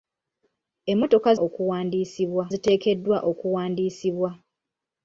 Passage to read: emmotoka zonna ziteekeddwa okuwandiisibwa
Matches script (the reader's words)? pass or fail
fail